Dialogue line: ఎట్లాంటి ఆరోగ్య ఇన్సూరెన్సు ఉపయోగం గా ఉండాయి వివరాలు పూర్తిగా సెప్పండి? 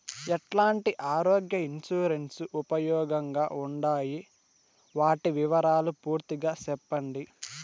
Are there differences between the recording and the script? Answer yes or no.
yes